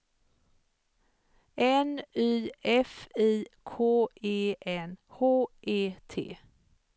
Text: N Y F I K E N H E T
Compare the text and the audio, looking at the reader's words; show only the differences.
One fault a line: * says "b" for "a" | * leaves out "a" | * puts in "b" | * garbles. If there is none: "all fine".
all fine